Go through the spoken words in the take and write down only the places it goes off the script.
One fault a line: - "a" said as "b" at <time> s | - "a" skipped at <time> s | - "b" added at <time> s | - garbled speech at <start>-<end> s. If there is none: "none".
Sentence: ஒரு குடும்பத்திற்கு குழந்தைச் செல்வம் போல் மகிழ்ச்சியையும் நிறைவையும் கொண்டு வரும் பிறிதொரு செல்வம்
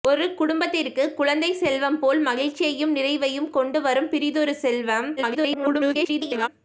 - garbled speech at 5.2-6.5 s